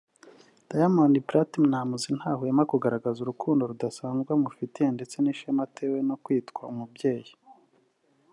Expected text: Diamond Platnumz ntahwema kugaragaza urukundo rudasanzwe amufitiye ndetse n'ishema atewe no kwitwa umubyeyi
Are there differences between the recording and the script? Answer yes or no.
no